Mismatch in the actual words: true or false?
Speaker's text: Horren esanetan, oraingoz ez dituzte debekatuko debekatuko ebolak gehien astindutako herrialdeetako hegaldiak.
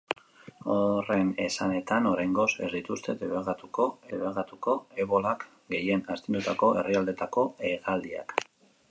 false